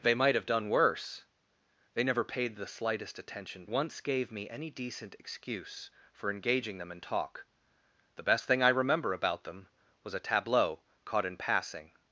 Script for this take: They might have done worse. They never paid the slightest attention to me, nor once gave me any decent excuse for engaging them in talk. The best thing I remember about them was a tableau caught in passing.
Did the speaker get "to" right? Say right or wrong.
wrong